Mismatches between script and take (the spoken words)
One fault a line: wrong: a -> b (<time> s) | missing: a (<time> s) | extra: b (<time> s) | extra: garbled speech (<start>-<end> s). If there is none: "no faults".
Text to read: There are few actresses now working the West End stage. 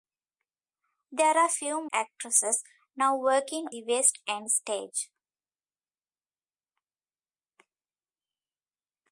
no faults